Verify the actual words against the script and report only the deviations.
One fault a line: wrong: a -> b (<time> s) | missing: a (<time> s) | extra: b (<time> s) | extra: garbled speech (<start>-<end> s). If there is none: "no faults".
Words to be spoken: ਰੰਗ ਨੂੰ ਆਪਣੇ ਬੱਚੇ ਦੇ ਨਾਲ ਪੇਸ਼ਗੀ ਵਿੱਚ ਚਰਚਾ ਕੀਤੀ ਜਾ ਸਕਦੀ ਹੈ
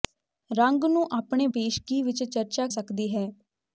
missing: ਬੱਚੇ ਦੇ ਨਾਲ (1.5 s)
missing: ਕੀਤੀ ਜਾ (2.7 s)